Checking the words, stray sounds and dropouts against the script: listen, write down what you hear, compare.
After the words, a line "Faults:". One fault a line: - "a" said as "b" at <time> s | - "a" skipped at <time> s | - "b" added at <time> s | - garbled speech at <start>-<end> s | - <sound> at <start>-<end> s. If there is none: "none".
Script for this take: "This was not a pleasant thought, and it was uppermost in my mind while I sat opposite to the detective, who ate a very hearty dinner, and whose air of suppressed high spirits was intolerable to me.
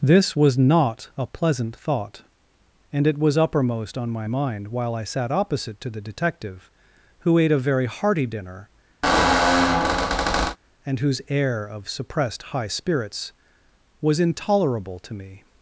"This was not a pleasant thought, and it was uppermost on my mind while I sat opposite to the detective, who ate a very hearty dinner, and whose air of suppressed high spirits was intolerable to me.
Faults:
- "in" said as "on" at 4.0 s
- squeak at 9.0-10.6 s